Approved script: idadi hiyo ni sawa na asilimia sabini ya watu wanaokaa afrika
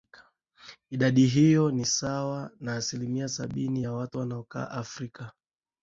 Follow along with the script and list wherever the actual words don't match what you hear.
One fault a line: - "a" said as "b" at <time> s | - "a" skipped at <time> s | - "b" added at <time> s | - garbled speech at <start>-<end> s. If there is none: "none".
none